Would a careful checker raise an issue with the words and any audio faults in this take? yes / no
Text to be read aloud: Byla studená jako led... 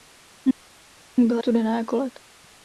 no